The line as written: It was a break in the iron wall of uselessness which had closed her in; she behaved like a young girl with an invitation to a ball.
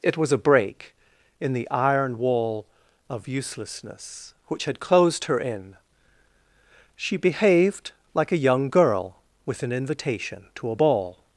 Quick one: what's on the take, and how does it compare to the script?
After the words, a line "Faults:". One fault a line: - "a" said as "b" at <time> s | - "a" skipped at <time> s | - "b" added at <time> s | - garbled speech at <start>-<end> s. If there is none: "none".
It was a break in the iron wall of uselessness which had closed her in; she behaved like a young girl with an invitation to a ball.
Faults:
none